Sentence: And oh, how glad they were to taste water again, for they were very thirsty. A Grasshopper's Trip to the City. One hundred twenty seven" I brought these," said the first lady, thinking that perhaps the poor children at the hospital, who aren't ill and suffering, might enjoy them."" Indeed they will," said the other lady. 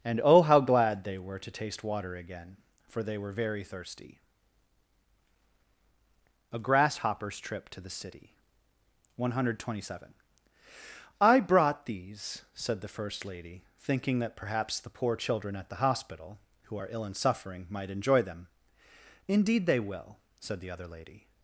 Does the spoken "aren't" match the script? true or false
false